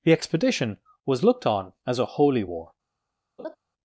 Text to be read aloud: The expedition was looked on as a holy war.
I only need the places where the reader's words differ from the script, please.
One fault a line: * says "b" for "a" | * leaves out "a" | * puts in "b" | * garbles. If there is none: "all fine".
all fine